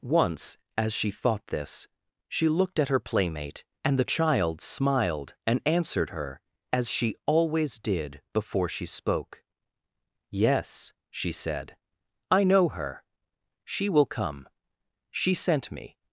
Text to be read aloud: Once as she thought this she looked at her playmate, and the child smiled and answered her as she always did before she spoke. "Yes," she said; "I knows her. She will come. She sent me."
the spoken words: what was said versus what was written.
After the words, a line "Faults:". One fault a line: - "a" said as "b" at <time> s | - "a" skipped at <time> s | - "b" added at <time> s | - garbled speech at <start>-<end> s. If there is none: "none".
Once as she thought this she looked at her playmate, and the child smiled and answered her as she always did before she spoke. "Yes," she said; "I know her. She will come. She sent me."
Faults:
- "knows" said as "know" at 12.4 s